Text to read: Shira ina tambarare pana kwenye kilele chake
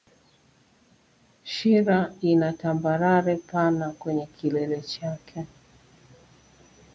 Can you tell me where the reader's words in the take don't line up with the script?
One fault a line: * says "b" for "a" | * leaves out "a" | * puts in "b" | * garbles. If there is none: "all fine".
all fine